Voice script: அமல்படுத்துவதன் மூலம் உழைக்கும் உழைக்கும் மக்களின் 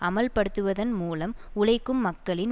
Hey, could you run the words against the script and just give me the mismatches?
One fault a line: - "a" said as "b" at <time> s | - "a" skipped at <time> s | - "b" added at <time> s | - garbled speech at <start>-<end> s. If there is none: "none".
- "உழைக்கும்" skipped at 2.0 s